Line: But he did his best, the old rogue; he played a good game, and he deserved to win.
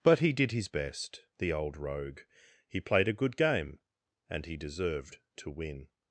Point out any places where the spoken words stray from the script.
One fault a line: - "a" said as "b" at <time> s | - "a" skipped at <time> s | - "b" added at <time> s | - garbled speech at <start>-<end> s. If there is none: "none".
none